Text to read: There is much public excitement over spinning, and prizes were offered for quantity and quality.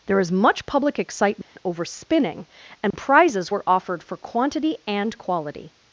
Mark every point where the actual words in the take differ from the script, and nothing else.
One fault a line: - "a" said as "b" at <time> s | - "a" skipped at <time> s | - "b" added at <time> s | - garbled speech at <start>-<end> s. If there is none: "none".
none